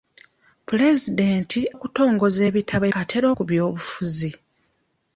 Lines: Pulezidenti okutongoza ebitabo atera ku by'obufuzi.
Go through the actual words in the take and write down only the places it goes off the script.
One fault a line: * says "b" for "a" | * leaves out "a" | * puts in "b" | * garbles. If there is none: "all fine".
all fine